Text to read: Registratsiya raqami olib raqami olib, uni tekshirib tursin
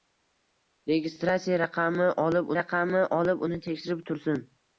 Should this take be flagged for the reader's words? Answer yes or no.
no